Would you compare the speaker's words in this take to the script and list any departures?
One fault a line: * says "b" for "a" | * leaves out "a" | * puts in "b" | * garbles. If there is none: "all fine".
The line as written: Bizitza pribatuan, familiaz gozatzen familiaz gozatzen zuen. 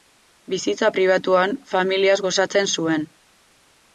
* leaves out "familiaz gozatzen"